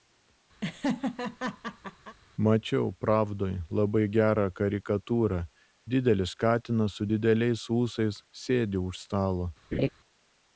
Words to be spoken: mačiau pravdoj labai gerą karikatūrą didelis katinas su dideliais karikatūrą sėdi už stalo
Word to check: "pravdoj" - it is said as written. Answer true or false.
true